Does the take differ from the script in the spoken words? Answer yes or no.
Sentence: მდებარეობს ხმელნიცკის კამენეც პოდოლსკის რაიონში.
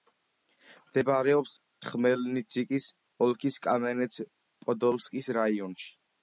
yes